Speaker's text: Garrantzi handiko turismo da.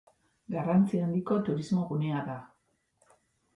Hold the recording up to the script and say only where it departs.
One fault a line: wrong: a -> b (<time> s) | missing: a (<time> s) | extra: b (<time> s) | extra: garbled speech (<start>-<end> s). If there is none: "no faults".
extra: gunea (1.9 s)